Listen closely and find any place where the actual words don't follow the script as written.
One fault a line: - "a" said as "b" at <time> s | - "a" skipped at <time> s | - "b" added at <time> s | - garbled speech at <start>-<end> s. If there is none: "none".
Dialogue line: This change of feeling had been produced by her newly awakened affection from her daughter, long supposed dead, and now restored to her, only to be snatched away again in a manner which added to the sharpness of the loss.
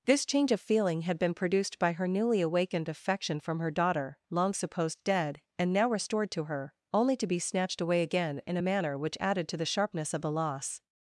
none